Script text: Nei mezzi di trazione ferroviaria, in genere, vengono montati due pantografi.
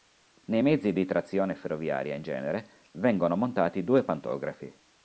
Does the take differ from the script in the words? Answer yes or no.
no